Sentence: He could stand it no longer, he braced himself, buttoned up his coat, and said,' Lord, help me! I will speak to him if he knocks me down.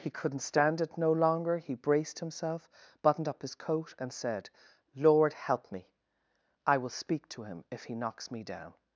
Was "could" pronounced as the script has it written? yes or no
no